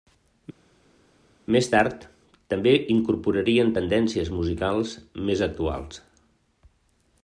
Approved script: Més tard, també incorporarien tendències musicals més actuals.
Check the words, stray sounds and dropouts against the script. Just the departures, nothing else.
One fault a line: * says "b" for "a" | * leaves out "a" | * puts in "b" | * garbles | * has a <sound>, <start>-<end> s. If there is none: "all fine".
all fine